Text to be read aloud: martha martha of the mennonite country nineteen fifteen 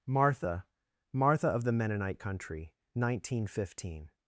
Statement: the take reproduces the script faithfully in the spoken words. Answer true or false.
true